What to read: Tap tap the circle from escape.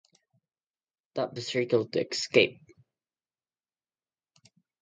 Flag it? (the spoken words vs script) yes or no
yes